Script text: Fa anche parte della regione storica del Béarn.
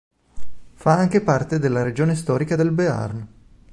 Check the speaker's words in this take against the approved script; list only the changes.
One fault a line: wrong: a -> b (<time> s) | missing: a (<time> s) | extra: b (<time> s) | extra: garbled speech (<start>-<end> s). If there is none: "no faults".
no faults